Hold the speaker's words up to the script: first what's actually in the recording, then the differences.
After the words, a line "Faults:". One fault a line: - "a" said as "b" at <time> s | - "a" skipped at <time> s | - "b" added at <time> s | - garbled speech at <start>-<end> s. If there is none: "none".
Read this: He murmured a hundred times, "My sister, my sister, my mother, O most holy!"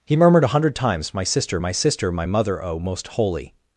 He murmured a hundred times, "My sister, my sister, my mother, O most holy!"
Faults:
none